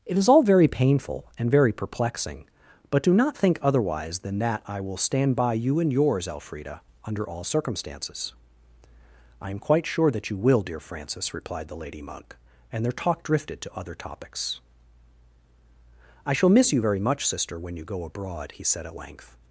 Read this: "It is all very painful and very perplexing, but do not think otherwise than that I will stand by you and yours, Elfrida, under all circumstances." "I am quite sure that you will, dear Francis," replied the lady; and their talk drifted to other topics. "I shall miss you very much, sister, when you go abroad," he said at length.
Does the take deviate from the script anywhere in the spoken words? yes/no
yes